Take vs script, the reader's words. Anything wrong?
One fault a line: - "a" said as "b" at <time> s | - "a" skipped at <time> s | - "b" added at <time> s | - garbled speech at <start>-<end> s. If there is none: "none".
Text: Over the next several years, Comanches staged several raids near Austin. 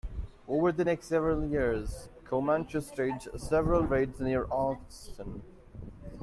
none